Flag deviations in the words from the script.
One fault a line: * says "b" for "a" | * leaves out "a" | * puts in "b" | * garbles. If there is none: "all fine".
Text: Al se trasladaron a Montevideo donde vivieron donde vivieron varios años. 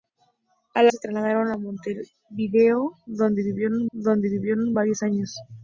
all fine